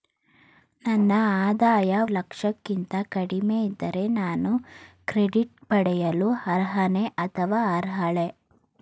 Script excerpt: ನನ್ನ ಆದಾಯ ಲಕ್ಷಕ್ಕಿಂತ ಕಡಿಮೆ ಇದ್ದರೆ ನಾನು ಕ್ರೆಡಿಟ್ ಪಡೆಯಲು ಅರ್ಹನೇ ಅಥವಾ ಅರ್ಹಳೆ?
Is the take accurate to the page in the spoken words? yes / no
yes